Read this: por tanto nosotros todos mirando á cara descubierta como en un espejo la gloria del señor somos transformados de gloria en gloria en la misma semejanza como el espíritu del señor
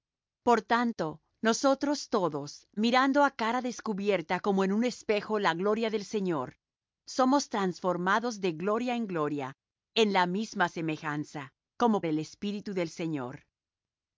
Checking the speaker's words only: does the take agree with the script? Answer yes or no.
yes